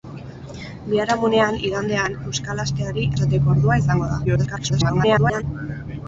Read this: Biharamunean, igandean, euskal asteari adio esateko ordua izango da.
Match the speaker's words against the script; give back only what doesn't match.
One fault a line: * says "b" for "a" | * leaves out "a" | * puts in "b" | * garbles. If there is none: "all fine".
* leaves out "adio"
* garbles